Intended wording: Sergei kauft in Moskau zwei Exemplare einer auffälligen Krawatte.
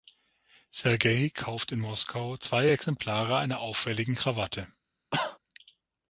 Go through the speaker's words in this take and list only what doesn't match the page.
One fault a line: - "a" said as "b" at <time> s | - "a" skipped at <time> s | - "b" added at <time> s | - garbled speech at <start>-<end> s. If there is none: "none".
none